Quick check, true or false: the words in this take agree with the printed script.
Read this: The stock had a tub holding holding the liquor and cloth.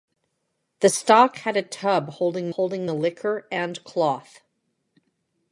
true